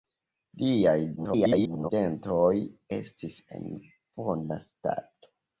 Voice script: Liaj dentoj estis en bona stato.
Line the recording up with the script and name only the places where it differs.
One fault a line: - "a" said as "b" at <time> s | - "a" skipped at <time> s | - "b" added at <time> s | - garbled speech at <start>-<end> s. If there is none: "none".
- garbled speech at 1.2-1.9 s